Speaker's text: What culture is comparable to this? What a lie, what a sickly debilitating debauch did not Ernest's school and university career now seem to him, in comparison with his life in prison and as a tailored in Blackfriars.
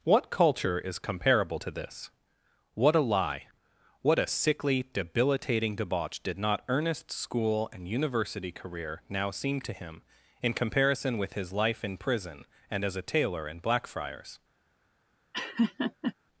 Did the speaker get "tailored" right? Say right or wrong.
wrong